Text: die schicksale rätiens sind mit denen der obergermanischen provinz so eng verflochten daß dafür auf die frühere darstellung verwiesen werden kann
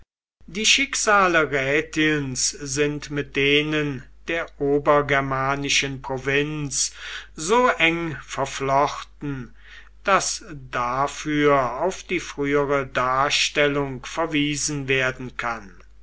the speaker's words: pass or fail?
pass